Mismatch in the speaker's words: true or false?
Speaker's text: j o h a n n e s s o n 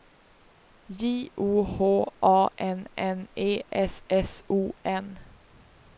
false